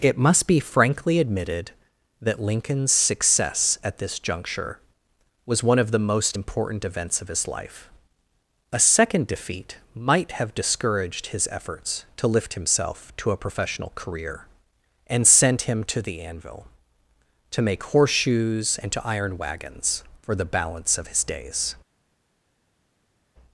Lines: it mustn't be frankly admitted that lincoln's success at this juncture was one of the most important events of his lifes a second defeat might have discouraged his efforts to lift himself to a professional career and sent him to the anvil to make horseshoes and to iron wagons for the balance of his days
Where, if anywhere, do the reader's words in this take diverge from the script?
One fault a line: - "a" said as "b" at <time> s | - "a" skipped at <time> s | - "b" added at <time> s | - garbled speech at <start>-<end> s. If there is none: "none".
- "mustn't" said as "must" at 0.2 s
- "lifes" said as "life" at 7.5 s